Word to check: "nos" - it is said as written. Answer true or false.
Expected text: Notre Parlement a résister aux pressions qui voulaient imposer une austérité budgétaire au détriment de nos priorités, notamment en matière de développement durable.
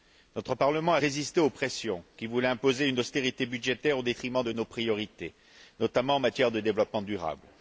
true